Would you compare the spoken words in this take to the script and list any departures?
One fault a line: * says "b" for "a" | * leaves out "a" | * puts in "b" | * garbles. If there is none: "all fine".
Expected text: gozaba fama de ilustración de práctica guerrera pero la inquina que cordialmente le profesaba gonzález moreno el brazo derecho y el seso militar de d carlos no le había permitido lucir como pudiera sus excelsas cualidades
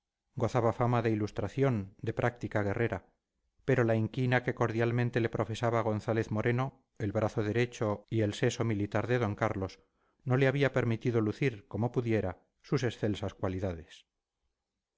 all fine